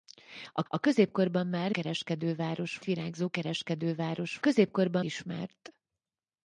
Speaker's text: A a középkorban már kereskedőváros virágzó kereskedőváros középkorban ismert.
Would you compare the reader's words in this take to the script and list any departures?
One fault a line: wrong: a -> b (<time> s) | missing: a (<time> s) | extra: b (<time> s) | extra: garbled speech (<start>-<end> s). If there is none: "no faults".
no faults